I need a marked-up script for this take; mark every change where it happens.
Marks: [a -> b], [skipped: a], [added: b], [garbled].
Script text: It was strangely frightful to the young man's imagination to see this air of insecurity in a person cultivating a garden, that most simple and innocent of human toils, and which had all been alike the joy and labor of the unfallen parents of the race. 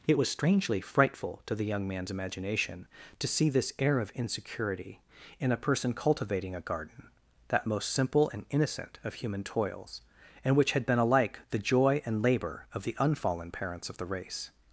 It was strangely frightful to the young man's imagination to see this air of insecurity in a person cultivating a garden, that most simple and innocent of human toils, and which had [skipped: all] been alike the joy and labor of the unfallen parents of the race.